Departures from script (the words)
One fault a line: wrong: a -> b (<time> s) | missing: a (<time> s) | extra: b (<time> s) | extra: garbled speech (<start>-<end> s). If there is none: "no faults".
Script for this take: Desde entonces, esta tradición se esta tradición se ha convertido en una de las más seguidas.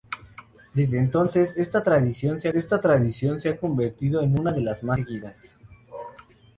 no faults